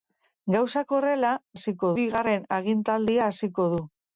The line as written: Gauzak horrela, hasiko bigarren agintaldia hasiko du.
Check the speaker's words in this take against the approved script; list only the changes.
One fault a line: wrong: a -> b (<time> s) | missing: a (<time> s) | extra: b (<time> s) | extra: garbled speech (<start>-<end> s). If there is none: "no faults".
no faults